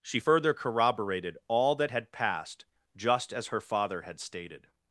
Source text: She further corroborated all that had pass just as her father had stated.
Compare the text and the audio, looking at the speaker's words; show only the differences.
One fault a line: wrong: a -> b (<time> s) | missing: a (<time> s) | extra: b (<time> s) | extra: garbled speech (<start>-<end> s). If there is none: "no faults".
wrong: pass -> passed (2.1 s)